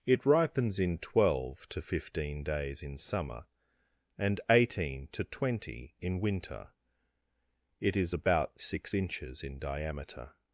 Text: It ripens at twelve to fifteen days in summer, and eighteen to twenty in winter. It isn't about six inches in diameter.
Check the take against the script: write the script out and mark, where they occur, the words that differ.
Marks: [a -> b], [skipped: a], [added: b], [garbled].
It ripens [at -> in] twelve to fifteen days in summer, and eighteen to twenty in winter. It [isn't -> is] about six inches in diameter.